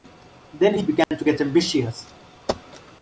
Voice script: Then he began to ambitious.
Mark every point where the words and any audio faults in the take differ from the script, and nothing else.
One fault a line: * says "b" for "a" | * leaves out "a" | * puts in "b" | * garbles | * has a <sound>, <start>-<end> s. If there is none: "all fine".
* has a dropout, 1.0-1.1 s
* puts in "get"